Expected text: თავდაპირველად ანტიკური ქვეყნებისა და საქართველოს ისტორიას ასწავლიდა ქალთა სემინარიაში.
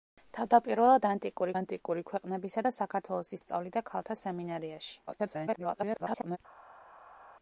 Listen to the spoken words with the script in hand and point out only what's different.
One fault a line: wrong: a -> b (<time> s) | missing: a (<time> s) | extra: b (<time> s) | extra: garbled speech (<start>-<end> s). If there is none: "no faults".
extra: ანტიკური (1.5 s)
missing: ისტორიას (3.3 s)
extra: garbled speech (5.1-6.4 s)